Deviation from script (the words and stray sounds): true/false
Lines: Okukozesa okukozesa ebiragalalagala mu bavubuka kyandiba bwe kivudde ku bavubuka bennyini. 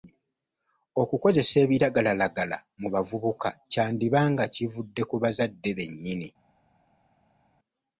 true